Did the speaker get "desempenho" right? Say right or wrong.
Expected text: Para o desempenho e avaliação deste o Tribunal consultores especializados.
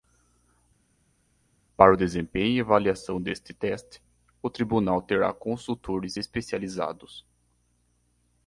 right